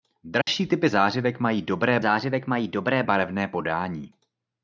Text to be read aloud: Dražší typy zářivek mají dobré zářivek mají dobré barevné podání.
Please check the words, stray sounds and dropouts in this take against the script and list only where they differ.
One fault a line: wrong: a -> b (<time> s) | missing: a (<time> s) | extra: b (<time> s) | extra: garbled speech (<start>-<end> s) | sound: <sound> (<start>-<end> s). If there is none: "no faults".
sound: dropout (0.4-0.5 s)